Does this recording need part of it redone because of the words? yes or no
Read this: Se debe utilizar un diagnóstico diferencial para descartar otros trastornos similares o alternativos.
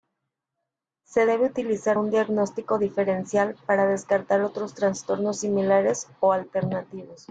no